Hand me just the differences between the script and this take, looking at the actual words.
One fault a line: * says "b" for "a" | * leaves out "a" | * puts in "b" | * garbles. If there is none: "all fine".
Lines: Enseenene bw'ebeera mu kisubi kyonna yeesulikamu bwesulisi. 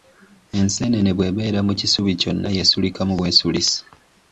all fine